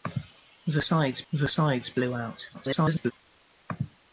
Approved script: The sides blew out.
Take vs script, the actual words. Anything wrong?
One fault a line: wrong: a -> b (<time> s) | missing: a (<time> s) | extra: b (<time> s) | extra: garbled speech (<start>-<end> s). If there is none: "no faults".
extra: the sides (1.3 s)
extra: garbled speech (2.5-3.1 s)